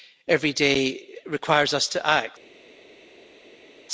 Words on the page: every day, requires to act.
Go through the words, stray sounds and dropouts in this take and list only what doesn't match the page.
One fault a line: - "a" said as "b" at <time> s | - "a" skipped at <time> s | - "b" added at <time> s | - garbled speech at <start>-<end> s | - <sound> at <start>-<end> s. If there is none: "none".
- "us" added at 1.7 s